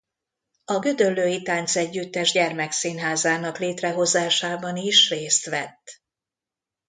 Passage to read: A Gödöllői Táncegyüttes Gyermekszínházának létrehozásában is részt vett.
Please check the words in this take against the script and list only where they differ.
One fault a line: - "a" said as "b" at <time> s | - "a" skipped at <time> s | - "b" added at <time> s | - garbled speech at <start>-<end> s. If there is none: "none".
none